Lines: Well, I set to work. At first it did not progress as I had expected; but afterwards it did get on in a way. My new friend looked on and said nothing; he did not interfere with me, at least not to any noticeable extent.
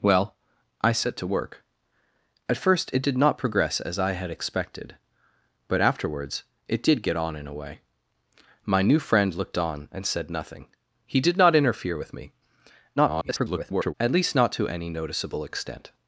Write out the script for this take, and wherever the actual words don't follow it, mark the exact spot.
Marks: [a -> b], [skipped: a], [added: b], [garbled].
Well, I set to work. At first it did not progress as I had expected; but afterwards it did get on in a way. My new friend looked on and said nothing; he did not interfere with me, [garbled] at least not to any noticeable extent.